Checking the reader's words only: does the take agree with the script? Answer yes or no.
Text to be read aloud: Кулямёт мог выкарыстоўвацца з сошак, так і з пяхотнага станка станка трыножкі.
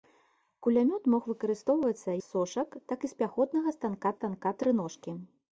yes